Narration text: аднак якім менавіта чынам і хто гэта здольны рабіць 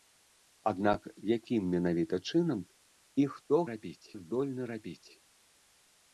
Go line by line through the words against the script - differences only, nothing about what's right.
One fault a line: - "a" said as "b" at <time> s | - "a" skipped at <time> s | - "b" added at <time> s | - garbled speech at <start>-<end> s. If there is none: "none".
- "гэта" said as "рабіць" at 3.7 s